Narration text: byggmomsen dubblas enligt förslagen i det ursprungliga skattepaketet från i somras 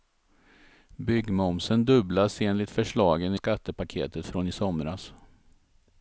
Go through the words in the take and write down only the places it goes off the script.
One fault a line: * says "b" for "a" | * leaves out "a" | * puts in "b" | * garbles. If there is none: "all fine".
* leaves out "i det ursprungliga"